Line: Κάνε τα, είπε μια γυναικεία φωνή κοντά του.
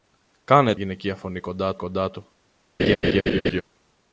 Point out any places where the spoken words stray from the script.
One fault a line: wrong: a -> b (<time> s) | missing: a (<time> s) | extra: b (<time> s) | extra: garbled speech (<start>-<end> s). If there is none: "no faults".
missing: τα είπε μια (0.8 s)
extra: κοντά (1.8 s)